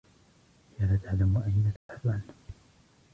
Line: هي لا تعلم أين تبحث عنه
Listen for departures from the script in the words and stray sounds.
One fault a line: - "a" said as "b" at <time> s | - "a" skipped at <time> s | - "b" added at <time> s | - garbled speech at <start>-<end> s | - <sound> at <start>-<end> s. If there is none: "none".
- dropout at 1.8-1.9 s